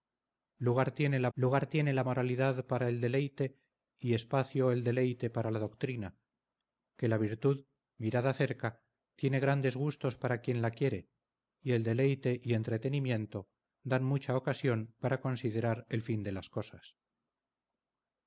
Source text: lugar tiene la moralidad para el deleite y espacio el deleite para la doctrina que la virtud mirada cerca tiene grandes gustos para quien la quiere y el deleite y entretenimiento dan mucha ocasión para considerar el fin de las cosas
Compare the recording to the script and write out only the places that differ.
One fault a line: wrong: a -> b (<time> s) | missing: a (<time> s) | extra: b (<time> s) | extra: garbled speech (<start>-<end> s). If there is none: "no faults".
extra: lugar tiene la (1.3 s)